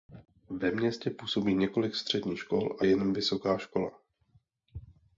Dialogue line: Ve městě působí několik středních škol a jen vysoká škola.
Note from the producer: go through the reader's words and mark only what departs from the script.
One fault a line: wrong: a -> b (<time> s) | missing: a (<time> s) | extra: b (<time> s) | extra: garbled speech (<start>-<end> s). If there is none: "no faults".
no faults